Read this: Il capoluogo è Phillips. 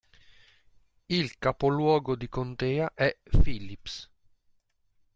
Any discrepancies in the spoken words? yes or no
yes